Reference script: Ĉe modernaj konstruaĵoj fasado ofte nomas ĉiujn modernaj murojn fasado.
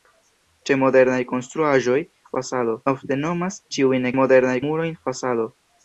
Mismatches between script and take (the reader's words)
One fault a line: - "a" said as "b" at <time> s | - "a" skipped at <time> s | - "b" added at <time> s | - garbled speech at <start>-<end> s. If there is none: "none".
none